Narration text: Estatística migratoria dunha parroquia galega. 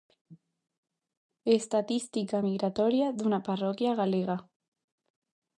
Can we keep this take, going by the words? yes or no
yes